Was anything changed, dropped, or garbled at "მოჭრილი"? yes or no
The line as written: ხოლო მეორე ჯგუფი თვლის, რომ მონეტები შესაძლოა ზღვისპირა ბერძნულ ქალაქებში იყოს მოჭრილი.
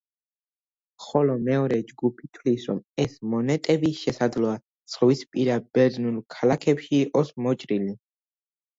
no